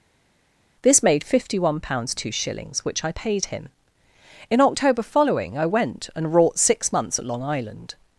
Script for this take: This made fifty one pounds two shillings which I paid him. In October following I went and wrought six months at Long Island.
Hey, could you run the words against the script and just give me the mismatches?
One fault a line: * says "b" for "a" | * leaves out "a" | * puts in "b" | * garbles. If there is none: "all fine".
all fine